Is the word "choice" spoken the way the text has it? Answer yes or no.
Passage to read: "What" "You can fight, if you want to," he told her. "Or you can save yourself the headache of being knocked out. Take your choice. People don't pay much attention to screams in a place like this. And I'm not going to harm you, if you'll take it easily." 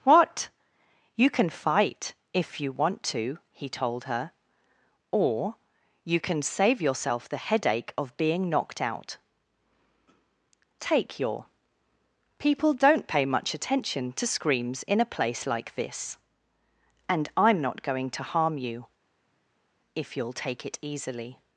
no